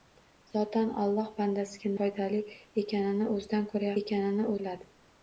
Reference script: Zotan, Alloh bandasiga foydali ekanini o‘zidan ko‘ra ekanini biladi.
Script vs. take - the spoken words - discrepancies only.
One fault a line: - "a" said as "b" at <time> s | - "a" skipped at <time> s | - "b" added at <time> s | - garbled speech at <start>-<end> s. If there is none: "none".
none